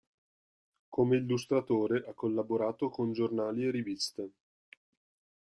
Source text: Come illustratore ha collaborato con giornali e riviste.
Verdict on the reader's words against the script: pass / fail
pass